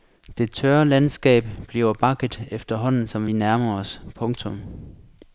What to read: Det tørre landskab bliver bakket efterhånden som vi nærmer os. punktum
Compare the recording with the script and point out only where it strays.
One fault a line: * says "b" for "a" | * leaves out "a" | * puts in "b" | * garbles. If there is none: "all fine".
all fine